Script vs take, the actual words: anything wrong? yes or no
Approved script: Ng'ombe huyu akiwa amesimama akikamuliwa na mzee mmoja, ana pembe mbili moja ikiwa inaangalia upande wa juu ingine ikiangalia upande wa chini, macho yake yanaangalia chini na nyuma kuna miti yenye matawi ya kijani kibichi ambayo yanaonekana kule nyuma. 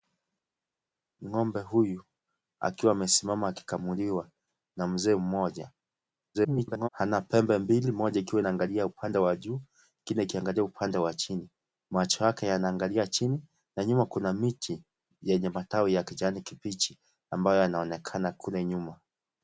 yes